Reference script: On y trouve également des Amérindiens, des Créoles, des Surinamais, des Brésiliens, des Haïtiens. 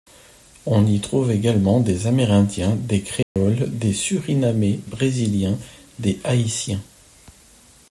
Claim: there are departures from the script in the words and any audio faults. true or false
true